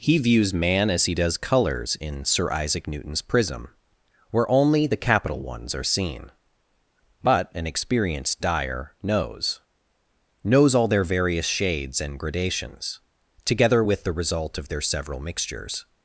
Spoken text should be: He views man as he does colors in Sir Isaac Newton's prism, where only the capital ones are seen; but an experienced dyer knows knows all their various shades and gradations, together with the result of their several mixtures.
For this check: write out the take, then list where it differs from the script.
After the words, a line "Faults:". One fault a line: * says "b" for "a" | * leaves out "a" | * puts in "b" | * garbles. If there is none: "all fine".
He views man as he does colors in Sir Isaac Newton's prism, where only the capital ones are seen; but an experienced dyer knows knows all their various shades and gradations, together with the result of their several mixtures.
Faults:
all fine